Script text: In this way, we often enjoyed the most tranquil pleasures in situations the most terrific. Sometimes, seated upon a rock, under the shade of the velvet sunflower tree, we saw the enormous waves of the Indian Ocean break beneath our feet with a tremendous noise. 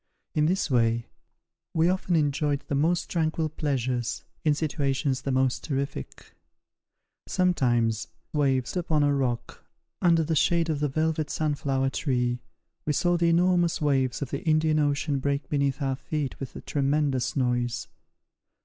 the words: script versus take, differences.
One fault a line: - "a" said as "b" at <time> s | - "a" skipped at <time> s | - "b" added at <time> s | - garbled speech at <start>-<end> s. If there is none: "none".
- "seated" said as "waves" at 8.3 s